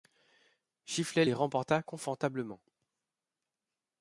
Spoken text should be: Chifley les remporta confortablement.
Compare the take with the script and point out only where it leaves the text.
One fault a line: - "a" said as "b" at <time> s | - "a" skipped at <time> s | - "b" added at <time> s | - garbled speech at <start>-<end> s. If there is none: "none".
none